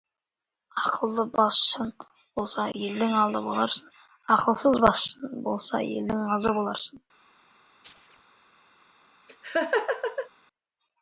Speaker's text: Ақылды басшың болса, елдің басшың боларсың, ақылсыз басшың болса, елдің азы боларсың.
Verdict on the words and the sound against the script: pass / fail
fail